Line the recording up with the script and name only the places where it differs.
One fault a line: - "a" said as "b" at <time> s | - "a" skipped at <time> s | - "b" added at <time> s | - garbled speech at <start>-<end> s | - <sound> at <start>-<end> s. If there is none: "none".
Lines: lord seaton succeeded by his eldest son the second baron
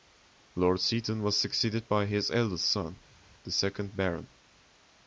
- "was" added at 1.2 s